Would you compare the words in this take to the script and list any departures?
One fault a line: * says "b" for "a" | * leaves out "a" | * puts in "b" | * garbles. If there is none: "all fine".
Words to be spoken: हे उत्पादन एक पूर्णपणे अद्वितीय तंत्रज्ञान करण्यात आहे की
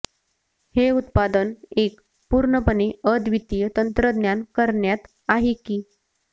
all fine